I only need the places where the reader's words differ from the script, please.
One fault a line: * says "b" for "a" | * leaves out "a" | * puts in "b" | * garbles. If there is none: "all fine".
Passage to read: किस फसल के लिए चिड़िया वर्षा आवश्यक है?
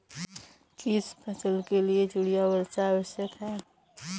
all fine